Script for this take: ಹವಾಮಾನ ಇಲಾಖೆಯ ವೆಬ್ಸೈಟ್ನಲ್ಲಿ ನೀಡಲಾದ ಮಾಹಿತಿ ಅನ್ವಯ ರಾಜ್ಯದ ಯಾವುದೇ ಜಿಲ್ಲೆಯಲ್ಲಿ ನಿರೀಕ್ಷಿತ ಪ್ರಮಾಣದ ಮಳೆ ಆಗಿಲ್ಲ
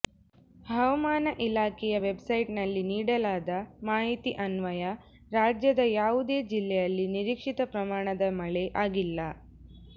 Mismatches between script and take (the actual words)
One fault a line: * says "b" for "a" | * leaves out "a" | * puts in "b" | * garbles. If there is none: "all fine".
all fine